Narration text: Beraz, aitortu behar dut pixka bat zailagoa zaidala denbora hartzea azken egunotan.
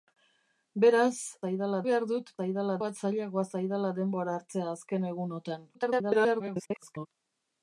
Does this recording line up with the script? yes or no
no